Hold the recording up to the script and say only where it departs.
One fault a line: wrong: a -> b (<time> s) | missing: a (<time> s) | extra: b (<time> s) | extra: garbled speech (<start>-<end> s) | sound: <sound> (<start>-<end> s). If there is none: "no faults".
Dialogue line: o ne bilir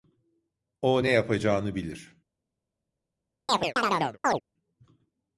extra: yapacağını (1.1 s)
sound: chirp (3.5-4.4 s)